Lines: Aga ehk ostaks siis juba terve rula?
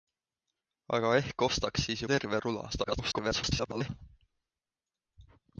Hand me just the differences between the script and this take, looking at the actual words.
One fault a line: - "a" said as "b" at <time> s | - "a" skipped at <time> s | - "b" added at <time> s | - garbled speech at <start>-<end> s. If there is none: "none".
- "juba" skipped at 2.0 s
- garbled speech at 2.7-3.9 s